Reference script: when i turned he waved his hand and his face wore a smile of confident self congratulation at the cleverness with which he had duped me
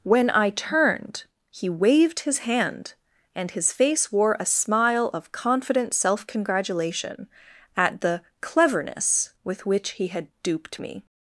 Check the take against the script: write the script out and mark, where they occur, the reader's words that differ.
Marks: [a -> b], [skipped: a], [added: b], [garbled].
when i turned he waved his hand and his face wore a smile of confident self congratulation at the cleverness with which he had duped me